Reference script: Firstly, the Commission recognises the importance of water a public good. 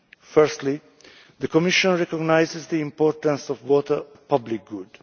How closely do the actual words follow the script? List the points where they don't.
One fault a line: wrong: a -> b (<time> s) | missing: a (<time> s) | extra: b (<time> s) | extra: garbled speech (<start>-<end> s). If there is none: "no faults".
no faults